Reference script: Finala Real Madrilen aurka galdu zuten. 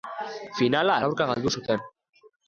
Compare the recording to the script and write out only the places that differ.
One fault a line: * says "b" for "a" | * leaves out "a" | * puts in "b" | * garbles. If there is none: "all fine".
* leaves out "Real Madrilen"